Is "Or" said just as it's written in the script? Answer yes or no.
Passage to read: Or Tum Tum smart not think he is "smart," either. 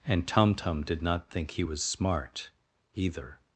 no